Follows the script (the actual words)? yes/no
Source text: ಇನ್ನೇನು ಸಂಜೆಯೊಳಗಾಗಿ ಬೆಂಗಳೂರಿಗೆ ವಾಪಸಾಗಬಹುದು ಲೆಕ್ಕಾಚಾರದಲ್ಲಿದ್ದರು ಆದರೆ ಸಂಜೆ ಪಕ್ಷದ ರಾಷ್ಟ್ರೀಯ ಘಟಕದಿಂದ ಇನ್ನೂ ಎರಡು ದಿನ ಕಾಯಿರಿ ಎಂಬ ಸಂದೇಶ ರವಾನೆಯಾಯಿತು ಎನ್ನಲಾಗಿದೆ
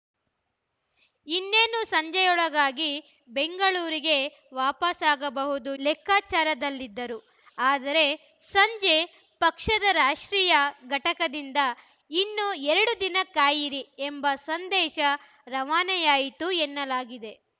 yes